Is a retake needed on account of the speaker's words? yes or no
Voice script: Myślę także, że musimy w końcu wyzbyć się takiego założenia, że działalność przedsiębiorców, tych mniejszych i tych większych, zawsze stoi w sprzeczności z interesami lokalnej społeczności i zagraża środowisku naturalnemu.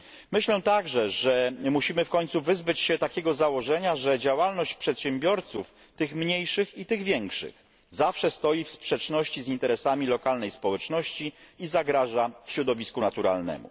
no